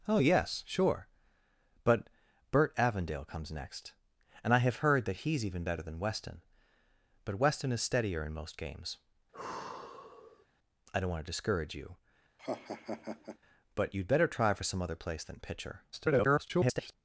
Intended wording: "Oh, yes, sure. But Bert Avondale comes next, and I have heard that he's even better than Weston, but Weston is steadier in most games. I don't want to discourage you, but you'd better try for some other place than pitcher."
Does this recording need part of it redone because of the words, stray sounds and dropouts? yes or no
yes